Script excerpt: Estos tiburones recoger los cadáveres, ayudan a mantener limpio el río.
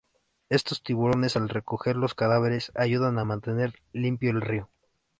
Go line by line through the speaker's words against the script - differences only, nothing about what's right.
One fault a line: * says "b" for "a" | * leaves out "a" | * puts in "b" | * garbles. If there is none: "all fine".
* puts in "al"